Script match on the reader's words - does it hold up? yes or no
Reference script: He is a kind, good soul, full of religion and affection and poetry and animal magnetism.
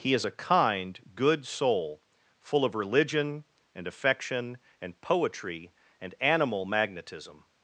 yes